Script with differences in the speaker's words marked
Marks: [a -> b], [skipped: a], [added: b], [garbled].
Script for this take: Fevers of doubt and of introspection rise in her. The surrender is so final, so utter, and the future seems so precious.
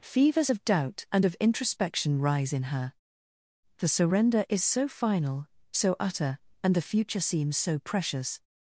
Fevers of doubt and of introspection rise in her. The surrender is so final, so utter, and the future seems so precious.